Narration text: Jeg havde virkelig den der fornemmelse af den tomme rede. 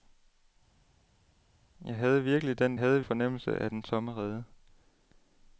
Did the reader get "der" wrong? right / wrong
wrong